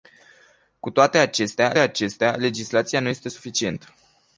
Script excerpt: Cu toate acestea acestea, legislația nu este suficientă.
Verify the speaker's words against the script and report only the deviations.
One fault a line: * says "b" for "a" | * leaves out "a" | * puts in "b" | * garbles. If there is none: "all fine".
all fine